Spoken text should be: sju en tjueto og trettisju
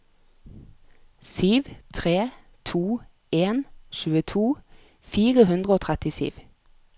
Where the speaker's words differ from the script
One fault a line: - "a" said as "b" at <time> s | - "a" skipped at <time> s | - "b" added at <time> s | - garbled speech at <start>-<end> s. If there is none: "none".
- "tre to" added at 1.9 s
- "fire hundre" added at 5.0 s